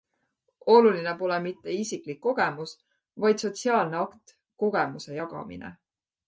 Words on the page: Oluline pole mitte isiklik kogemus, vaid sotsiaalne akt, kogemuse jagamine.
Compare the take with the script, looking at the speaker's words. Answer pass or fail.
pass